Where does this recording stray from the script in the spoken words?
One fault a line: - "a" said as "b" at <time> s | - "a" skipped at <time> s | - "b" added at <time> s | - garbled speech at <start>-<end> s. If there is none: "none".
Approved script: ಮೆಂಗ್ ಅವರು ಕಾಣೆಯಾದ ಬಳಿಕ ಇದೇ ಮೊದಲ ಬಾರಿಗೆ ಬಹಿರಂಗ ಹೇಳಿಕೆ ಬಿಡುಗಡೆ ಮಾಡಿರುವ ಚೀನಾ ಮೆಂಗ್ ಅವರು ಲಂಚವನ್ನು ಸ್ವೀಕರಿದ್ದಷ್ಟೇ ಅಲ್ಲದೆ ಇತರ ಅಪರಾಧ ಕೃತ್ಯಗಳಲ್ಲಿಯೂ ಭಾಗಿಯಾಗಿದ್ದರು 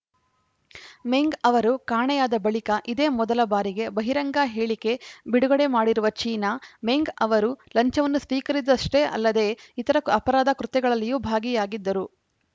none